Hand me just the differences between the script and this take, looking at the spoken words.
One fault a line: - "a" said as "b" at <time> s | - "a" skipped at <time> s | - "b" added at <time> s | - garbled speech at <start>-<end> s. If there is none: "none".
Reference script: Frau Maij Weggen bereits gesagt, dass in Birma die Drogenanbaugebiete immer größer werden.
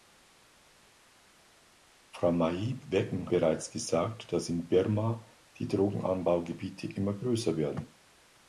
none